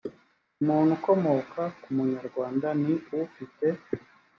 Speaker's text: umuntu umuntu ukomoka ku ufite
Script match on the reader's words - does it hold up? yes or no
no